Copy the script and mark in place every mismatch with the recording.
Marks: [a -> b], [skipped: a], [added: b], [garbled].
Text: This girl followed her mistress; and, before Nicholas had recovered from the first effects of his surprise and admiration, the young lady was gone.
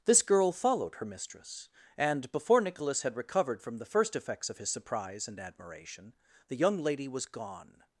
This girl followed her mistress; and, before Nicholas had recovered from the first effects of his surprise and admiration, the young lady was gone.